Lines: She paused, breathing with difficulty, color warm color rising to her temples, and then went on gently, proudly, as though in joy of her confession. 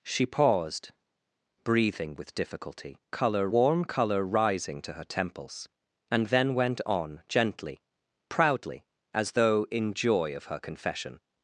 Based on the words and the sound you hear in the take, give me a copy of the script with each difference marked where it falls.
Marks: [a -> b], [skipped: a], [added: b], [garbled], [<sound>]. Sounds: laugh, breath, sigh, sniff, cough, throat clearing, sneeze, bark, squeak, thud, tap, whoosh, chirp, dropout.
She paused, breathing with difficulty, color warm color rising to her temples, and then went on gently, proudly, as though in joy of her confession.